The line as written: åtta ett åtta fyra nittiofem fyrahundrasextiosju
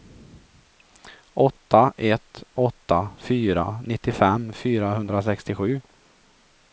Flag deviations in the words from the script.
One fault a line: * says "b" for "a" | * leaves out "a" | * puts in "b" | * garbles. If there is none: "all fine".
all fine